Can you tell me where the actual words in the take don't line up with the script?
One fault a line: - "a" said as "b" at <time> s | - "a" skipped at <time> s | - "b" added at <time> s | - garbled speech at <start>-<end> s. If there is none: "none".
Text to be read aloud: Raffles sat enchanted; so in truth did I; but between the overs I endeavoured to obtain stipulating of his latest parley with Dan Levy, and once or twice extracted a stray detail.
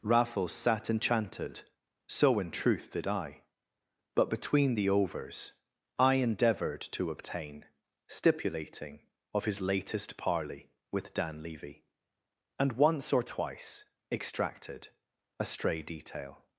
none